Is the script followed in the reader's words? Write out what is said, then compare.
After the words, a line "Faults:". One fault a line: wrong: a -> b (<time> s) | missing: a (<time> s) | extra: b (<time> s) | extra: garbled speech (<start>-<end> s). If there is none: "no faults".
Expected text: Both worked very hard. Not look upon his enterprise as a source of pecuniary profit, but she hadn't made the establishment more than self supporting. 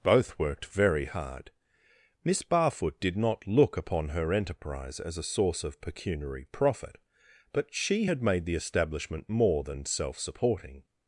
Both worked very hard. Miss Barfoot did not look upon her enterprise as a source of pecuniary profit, but she had made the establishment more than self supporting.
Faults:
extra: Miss Barfoot did (2.2 s)
wrong: his -> her (4.1 s)
wrong: hadn't -> had (8.0 s)